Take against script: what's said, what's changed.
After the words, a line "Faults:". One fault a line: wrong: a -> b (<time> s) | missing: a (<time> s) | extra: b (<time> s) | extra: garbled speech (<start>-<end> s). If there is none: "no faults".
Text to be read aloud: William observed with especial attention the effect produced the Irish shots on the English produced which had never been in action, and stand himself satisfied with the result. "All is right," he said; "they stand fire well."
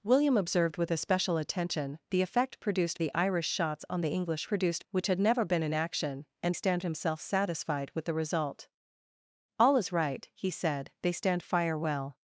William observed with especial attention the effect produced the Irish shots on the English produced which had never been in action, and stand himself satisfied with the result. "All is right," he said; "they stand fire well."
Faults:
no faults